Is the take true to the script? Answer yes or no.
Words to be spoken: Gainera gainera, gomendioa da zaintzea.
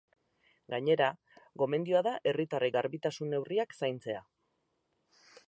no